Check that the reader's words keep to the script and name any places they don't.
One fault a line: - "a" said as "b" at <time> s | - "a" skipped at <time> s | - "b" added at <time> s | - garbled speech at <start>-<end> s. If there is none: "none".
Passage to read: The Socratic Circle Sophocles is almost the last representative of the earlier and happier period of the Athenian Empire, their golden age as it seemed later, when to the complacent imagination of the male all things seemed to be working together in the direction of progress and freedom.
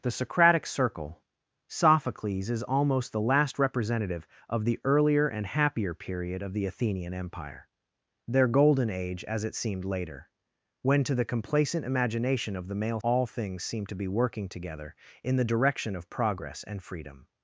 none